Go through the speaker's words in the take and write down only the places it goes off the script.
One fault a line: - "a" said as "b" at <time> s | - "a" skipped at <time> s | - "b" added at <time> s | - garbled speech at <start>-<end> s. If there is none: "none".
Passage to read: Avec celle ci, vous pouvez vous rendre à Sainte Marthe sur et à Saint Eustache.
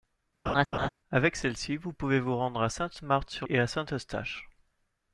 none